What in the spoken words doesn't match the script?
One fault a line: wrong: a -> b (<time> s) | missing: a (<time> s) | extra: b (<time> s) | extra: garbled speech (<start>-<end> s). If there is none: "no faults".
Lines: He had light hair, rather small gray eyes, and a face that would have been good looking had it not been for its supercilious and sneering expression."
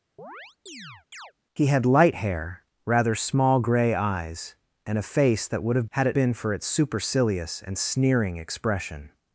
missing: been good looking (5.9 s)
missing: not (6.2 s)